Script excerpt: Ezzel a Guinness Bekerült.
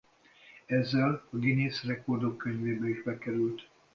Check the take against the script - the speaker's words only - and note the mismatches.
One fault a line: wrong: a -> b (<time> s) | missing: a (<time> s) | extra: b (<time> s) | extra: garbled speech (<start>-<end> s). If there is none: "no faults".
extra: Rekordok Könyvébe is (1.8 s)